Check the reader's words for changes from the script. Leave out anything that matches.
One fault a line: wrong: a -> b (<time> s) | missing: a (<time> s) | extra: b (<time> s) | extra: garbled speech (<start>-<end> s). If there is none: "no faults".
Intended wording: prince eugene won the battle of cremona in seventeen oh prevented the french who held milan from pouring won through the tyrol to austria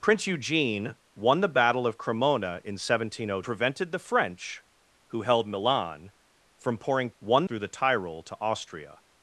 no faults